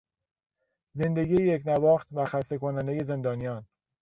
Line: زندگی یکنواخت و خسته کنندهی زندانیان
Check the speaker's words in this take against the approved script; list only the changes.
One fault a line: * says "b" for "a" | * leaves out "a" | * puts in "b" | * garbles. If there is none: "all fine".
all fine